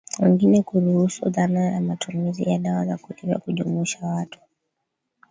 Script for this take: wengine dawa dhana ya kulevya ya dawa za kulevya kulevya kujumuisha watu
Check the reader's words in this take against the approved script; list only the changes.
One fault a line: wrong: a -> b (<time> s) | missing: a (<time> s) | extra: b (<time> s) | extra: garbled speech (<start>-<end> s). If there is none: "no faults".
wrong: dawa -> kuruhusu (0.6 s)
wrong: kulevya -> matumizi (1.8 s)
missing: kulevya (3.4 s)